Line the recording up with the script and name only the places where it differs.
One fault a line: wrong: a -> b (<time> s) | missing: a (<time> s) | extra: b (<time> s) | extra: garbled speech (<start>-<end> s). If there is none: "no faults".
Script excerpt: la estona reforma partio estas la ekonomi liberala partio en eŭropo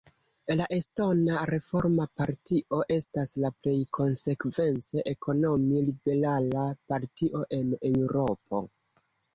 extra: plej konsekvence (3.6 s)